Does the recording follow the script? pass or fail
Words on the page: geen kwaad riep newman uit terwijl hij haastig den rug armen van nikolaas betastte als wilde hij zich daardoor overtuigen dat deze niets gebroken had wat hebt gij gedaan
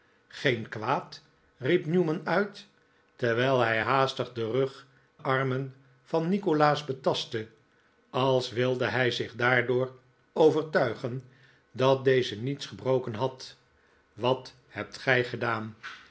pass